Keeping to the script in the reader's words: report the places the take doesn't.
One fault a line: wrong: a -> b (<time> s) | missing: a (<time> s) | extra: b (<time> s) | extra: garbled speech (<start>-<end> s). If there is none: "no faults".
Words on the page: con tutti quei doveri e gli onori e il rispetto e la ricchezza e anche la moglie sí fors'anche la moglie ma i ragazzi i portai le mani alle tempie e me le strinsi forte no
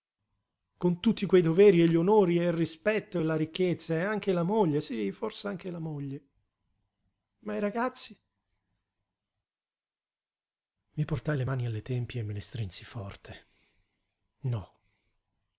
no faults